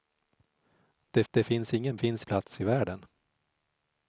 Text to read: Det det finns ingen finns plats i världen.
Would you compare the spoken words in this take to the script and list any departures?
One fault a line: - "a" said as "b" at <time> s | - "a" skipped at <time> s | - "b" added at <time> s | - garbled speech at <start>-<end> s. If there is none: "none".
none